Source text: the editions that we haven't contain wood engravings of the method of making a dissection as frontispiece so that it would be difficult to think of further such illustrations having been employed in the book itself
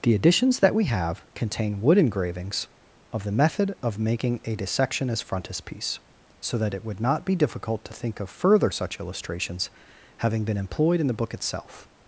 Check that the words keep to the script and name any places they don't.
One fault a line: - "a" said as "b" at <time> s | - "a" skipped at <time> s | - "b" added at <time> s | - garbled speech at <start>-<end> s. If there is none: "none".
- "haven't" said as "have" at 0.8 s
- "not" added at 7.0 s